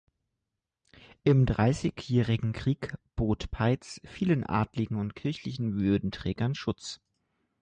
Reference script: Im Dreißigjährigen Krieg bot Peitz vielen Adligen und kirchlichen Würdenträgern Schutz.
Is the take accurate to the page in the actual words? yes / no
yes